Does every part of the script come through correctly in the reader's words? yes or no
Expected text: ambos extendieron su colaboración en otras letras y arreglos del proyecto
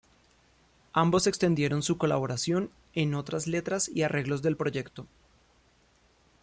yes